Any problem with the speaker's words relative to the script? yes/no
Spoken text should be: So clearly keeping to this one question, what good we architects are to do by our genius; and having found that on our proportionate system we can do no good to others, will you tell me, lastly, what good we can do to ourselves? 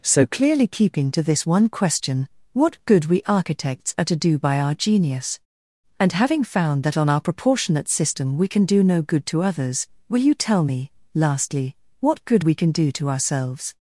no